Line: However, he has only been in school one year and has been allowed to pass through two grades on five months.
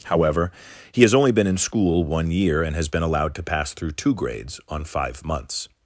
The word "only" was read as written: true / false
true